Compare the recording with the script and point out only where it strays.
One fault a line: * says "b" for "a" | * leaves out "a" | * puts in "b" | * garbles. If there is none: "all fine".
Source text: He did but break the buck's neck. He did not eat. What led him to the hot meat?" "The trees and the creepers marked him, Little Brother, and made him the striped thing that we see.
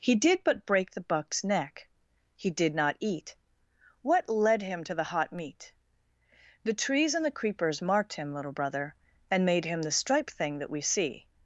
all fine